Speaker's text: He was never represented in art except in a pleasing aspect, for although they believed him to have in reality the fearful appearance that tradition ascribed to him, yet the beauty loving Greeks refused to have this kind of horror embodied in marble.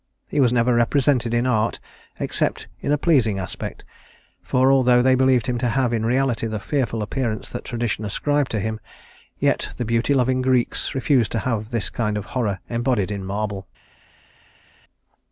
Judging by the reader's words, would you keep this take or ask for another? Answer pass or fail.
pass